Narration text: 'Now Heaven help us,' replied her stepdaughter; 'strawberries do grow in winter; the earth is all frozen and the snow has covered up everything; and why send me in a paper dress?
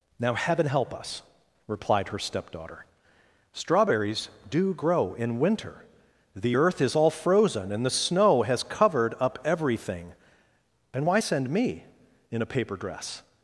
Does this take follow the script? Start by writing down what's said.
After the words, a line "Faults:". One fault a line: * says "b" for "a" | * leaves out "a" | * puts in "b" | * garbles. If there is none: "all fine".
'Now Heaven help us,' replied her stepdaughter; 'strawberries do grow in winter; the earth is all frozen and the snow has covered up everything; and why send me in a paper dress?
Faults:
all fine